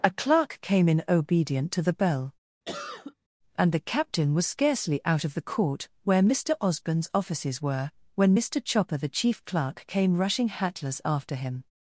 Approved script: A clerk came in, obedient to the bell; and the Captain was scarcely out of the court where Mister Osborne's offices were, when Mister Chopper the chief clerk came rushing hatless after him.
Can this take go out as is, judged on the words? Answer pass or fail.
pass